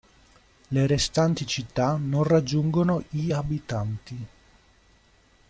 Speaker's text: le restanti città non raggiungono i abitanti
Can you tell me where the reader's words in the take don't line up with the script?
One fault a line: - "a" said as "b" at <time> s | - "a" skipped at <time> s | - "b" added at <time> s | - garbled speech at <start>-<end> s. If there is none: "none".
none